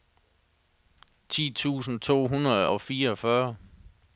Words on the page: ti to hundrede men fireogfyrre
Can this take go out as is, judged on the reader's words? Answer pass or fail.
fail